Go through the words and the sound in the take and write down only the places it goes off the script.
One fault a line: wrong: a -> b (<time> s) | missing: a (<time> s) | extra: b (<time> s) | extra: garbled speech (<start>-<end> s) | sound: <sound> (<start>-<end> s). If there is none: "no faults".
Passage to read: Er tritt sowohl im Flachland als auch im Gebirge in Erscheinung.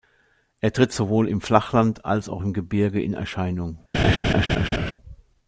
sound: laugh (3.9-4.9 s)